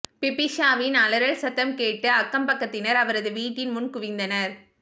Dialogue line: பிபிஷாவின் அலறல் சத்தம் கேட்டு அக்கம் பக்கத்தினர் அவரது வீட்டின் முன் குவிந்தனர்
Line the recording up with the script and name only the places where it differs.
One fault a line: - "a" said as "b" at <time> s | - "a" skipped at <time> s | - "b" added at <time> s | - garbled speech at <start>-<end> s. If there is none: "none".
none